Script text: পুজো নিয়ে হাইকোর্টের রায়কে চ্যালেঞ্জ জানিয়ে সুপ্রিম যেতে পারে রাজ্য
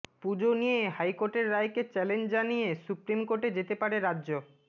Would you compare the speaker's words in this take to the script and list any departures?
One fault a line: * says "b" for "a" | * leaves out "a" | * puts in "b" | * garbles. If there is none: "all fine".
* puts in "কোর্টে"